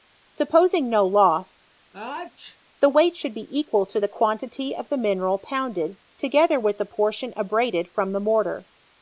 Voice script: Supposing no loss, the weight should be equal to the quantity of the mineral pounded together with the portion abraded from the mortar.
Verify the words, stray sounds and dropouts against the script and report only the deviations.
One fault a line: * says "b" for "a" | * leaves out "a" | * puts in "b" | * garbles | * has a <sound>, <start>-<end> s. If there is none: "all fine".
* has a sneeze, 1.9-2.6 s